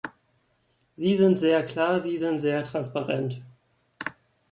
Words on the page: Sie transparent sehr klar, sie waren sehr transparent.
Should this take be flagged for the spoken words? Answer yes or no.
yes